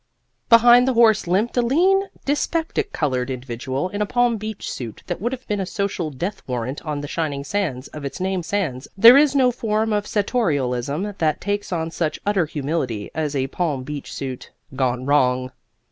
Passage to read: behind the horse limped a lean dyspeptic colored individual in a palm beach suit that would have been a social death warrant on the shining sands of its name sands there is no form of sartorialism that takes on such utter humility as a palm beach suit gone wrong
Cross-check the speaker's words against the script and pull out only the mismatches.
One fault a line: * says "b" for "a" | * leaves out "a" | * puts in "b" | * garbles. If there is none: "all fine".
all fine